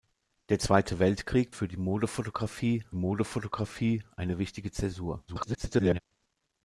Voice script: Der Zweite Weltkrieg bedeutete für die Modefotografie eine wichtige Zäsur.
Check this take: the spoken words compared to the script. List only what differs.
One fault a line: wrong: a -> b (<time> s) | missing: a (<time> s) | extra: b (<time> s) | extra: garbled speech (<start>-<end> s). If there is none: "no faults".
missing: bedeutete (1.5 s)
extra: Modefotografie (2.9 s)
extra: garbled speech (5.3-6.0 s)